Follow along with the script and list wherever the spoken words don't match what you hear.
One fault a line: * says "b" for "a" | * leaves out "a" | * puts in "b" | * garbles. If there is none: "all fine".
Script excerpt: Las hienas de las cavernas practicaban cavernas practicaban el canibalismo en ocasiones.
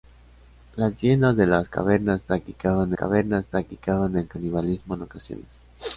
all fine